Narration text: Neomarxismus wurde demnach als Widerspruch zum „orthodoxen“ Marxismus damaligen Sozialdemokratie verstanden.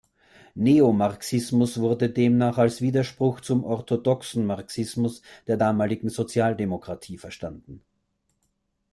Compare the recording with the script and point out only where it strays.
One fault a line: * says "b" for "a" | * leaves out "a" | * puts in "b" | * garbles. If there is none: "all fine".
* puts in "der"